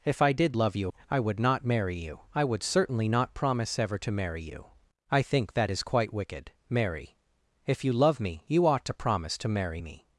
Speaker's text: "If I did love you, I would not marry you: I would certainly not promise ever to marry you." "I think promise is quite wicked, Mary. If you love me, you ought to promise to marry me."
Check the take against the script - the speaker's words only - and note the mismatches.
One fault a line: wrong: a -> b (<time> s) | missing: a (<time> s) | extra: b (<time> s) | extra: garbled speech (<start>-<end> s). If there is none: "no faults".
wrong: promise -> that (5.5 s)